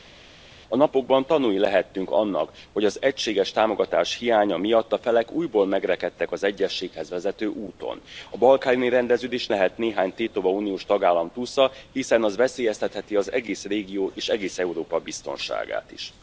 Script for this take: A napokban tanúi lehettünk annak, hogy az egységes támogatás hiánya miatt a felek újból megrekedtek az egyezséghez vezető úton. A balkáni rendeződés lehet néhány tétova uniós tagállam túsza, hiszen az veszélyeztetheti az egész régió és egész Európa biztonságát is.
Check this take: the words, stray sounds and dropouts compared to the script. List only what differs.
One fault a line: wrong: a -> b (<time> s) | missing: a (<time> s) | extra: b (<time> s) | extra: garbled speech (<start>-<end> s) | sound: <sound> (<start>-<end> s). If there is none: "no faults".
no faults